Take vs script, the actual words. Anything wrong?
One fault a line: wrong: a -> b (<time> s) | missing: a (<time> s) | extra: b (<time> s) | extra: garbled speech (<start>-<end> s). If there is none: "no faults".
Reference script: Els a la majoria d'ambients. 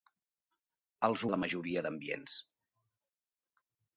no faults